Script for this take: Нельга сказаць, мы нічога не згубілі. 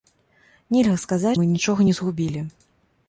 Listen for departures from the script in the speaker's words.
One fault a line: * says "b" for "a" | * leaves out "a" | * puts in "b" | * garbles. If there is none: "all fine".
all fine